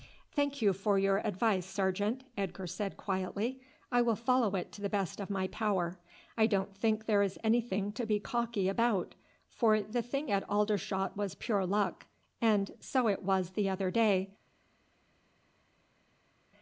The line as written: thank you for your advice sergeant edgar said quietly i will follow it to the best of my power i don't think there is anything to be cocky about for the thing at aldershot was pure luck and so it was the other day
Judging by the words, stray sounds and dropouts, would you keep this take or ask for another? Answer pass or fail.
pass